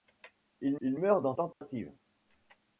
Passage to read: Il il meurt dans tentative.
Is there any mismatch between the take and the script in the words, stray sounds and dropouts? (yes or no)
yes